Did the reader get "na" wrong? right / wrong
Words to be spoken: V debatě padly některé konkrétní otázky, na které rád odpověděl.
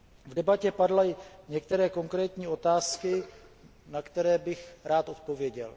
right